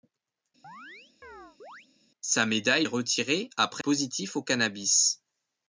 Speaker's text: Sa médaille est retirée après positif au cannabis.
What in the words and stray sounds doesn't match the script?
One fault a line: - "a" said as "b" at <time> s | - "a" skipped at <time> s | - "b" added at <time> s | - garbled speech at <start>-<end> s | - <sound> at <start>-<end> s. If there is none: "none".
- chirp at 0.6-1.9 s